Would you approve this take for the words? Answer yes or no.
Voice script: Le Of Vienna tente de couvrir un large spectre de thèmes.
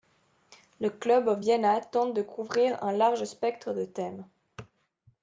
no